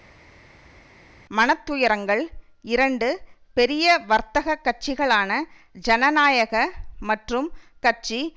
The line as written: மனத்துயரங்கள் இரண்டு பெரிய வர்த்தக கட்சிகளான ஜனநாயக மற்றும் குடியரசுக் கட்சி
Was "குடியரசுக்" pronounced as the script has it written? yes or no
no